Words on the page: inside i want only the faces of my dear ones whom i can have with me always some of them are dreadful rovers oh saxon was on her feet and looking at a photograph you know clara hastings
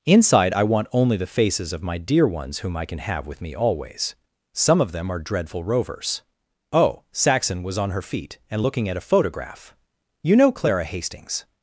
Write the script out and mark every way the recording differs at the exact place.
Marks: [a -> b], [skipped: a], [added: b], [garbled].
inside i want only the faces of my dear ones whom i can have with me always some of them are dreadful rovers oh saxon was on her feet and looking at a photograph you know clara hastings